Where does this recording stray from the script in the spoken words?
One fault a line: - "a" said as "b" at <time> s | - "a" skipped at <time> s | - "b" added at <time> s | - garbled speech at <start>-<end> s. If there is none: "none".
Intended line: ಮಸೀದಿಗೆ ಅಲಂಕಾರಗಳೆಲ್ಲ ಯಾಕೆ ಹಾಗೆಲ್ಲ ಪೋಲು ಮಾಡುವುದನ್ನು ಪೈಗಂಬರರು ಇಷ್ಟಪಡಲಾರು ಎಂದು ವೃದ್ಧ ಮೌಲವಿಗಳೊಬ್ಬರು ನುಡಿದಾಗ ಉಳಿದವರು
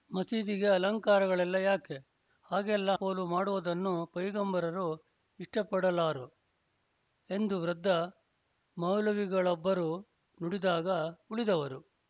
none